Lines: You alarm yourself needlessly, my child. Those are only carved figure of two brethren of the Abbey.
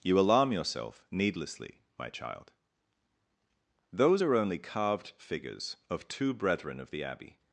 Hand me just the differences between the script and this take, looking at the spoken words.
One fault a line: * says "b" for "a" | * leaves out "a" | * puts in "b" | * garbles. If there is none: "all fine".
* says "figures" for "figure"